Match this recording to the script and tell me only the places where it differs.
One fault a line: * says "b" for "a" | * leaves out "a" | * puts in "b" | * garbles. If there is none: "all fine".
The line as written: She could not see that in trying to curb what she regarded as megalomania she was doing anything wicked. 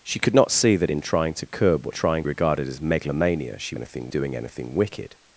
* says "trying" for "she"
* says "anything" for "was"